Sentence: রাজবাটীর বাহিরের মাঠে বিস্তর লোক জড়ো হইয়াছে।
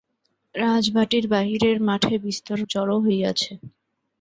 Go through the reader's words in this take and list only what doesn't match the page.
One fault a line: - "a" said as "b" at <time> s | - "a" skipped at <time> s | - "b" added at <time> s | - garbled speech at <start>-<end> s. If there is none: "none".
- "লোক" skipped at 2.6 s